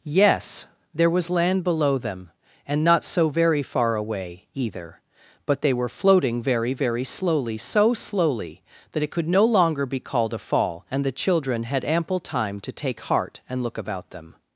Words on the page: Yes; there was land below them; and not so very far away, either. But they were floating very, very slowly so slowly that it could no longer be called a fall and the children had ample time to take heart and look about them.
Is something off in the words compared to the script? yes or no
no